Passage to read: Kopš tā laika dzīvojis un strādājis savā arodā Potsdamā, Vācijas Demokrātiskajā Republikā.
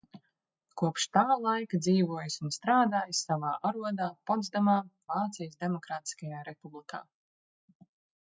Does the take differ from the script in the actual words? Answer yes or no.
no